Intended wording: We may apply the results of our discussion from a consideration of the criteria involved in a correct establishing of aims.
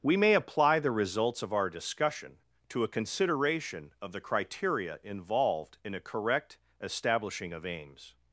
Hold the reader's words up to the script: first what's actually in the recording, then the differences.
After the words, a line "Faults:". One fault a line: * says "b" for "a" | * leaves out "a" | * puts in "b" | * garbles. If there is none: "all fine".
We may apply the results of our discussion to a consideration of the criteria involved in a correct establishing of aims.
Faults:
* says "to" for "from"